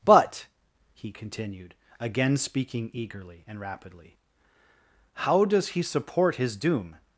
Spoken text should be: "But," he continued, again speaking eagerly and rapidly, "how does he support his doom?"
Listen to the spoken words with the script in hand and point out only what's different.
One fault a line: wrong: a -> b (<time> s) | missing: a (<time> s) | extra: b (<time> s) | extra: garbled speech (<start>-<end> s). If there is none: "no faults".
no faults